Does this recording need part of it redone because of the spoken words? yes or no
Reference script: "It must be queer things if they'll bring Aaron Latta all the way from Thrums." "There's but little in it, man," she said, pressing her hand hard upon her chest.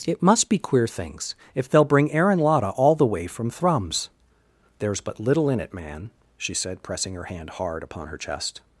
no